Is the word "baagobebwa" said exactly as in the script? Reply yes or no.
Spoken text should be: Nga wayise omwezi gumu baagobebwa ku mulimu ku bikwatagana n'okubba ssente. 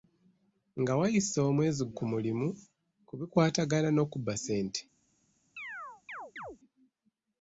no